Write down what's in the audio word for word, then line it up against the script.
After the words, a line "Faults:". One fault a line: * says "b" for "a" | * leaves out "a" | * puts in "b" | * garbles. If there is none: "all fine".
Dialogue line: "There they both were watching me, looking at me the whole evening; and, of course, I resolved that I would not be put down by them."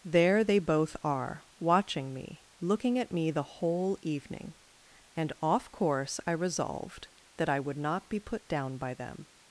"There they both are watching me, looking at me the whole evening; and, off course, I resolved that I would not be put down by them."
Faults:
* says "are" for "were"
* says "off" for "of"